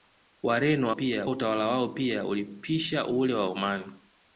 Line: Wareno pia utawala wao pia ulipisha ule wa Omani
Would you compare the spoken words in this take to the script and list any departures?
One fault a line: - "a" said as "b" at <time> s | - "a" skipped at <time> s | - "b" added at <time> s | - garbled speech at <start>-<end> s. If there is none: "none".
none